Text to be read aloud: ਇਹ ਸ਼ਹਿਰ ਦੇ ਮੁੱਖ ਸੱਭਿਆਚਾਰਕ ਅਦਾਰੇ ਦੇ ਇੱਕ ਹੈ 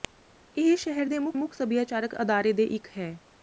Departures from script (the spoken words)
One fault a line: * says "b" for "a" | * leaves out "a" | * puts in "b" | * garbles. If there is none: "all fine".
* puts in "ਮੁੱਖ"